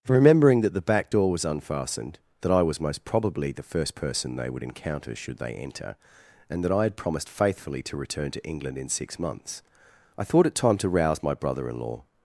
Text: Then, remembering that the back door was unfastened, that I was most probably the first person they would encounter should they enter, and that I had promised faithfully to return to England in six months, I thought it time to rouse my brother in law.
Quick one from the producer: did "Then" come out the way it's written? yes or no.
no